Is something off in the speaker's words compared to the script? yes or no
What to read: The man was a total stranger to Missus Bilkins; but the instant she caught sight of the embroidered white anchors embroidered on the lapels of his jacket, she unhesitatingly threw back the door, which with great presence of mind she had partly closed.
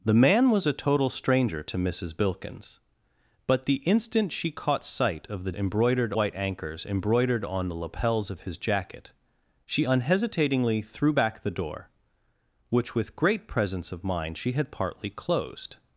no